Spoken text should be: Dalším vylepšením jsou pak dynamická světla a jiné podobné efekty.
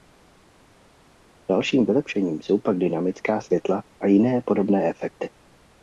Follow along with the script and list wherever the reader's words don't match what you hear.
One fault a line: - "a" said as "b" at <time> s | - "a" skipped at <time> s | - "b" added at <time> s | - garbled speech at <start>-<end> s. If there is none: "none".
none